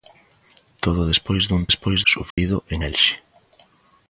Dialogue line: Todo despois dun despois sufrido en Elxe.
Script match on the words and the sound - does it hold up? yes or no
no